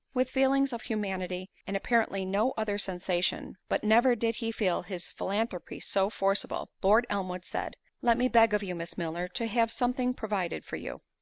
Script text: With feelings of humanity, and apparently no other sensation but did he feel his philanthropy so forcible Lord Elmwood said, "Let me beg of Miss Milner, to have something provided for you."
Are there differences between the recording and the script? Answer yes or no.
yes